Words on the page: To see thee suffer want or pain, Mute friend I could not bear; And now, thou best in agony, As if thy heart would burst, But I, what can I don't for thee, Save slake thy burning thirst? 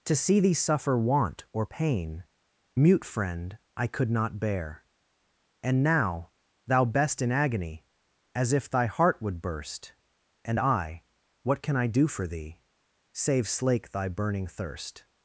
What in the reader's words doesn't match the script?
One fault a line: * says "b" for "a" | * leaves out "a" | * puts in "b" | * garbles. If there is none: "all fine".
* says "And" for "But"
* says "do" for "don't"